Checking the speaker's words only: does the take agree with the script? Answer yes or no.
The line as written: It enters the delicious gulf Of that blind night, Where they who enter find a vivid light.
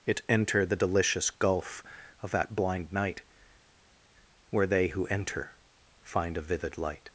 no